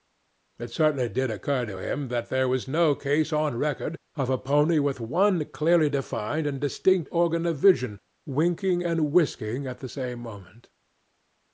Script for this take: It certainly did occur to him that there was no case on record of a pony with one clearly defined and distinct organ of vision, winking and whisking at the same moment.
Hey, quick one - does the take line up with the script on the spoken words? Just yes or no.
yes